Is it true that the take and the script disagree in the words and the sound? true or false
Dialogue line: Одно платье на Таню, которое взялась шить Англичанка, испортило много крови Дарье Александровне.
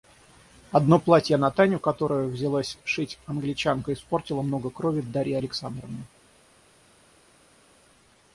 false